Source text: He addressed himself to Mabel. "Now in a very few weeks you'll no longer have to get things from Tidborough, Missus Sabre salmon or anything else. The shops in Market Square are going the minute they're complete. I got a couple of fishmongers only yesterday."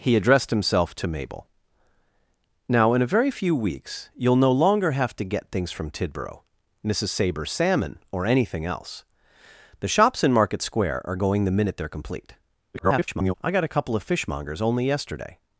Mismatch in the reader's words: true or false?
true